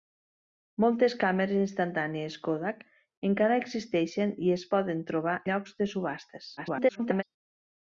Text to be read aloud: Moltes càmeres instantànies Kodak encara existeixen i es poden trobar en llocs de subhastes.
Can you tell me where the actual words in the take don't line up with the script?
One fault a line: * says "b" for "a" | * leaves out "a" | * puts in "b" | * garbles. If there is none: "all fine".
* leaves out "en"
* garbles